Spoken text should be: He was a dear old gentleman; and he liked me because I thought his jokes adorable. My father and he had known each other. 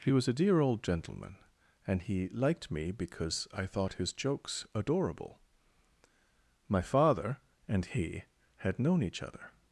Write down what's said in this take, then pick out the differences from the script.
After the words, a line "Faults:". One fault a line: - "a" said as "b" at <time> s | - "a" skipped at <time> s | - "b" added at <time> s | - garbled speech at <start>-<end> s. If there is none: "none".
He was a dear old gentleman; and he liked me because I thought his jokes adorable. My father and he had known each other.
Faults:
none